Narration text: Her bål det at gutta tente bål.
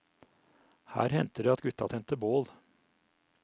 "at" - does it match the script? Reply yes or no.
yes